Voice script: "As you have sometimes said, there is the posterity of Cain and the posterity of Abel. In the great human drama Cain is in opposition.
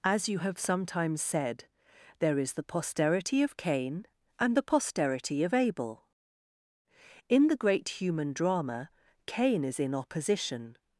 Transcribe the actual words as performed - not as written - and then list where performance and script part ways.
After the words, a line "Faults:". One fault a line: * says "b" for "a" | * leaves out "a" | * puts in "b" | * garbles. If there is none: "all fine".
"As you have sometimes said, there is the posterity of Cain and the posterity of Abel. In the great human drama Cain is in opposition.
Faults:
all fine